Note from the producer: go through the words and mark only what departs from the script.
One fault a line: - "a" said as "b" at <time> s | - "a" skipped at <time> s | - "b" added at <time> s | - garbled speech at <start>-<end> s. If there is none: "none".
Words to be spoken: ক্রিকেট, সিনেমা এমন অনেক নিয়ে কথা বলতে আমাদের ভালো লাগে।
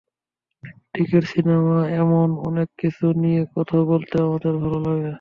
- "কিছু" added at 2.8 s